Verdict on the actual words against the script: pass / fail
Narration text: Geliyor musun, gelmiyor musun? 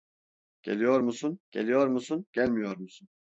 fail